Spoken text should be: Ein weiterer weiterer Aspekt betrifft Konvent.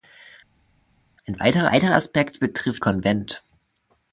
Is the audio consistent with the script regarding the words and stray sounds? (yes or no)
yes